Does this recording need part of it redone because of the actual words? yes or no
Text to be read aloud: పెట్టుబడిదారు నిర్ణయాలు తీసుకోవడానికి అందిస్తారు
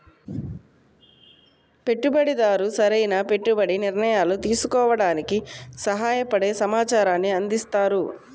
yes